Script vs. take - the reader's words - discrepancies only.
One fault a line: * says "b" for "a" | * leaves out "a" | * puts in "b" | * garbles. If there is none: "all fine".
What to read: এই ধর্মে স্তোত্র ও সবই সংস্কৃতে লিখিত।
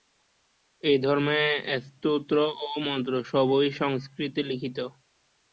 * puts in "মন্ত্র"